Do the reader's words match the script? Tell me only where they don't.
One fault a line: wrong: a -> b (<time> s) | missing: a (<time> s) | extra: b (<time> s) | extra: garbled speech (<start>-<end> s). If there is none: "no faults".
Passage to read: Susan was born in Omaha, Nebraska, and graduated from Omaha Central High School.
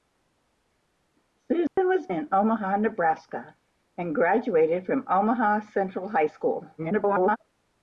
missing: born (2.1 s)
extra: garbled speech (6.8-7.4 s)